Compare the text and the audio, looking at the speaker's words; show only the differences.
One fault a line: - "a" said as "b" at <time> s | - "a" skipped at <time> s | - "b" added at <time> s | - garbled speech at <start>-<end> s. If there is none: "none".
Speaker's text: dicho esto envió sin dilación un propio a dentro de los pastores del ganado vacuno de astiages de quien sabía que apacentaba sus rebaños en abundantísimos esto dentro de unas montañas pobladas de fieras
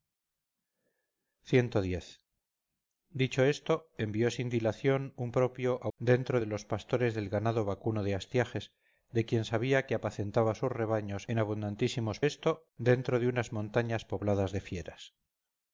none